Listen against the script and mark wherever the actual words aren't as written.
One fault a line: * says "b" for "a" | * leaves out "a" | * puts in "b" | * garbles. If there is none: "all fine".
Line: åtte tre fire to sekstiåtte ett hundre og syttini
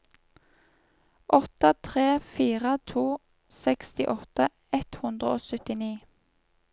all fine